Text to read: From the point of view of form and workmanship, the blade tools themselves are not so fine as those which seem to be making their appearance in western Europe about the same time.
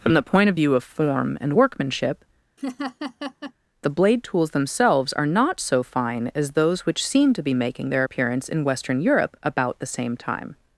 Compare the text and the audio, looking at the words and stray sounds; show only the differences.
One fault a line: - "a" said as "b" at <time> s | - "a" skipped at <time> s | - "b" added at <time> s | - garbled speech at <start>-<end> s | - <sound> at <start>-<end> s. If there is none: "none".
- laugh at 2.6-3.5 s